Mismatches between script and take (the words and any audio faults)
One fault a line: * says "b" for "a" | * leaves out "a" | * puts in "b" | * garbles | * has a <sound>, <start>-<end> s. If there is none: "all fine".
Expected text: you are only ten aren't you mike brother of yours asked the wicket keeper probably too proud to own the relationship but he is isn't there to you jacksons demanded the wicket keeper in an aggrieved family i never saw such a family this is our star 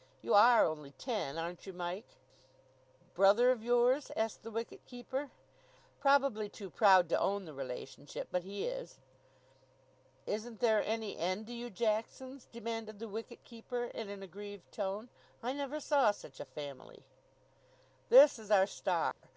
* puts in "any end"
* says "tone" for "family"
* has a dropout, 19.1-19.2 s